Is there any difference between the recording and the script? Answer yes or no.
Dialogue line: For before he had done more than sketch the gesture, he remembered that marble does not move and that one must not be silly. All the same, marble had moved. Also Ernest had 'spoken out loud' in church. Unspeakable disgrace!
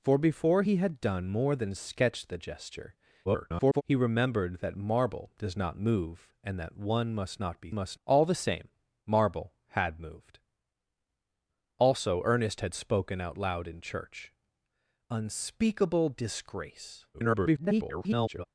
yes